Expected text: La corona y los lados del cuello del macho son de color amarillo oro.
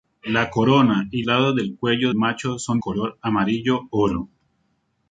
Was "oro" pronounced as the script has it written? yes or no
yes